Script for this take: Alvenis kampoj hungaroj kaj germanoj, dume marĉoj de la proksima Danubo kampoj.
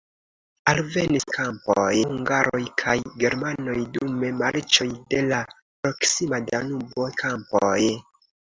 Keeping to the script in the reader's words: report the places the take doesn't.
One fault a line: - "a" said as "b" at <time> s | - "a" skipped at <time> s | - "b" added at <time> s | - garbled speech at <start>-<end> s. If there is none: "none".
none